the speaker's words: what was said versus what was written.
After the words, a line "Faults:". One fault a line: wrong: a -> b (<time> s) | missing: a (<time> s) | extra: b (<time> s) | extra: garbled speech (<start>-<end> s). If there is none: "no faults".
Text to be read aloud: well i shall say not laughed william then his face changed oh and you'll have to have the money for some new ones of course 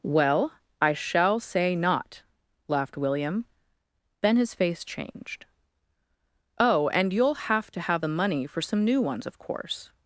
well i shall say not laughed william then his face changed oh and you'll have to have the money for some new ones of course
Faults:
no faults